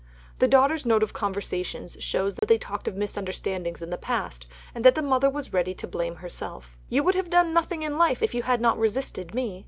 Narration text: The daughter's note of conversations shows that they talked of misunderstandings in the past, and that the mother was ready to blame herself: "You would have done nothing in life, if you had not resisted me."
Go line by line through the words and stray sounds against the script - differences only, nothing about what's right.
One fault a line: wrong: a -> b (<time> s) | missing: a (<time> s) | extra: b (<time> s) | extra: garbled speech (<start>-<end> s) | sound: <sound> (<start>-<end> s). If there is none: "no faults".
sound: dropout (2.4-2.4 s)